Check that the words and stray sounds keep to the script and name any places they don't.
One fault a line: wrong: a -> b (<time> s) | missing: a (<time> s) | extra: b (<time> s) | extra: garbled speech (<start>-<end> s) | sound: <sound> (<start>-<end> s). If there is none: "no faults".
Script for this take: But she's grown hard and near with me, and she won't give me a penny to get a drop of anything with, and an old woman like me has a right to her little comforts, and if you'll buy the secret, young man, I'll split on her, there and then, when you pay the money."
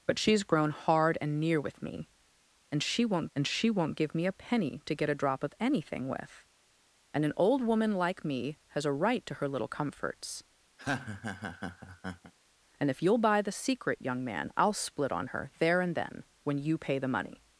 extra: and she won't (3.3 s)
sound: laugh (10.8-12.3 s)